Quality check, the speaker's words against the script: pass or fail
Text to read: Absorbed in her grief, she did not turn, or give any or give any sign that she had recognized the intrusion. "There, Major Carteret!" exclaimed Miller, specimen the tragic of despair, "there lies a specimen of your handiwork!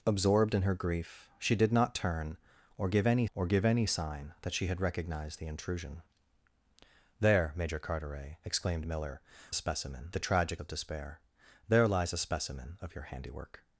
pass